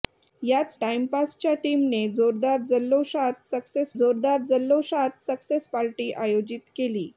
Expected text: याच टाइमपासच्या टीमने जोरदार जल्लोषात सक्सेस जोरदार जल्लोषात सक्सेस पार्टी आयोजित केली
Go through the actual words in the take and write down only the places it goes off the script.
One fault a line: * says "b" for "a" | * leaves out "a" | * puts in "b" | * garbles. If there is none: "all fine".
all fine